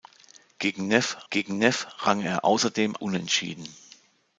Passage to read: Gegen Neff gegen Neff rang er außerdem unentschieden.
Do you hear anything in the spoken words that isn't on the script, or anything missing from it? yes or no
no